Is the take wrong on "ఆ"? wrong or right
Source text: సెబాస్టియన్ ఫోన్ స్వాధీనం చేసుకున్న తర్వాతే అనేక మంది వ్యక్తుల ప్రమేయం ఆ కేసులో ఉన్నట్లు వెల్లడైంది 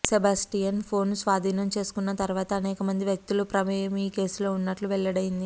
wrong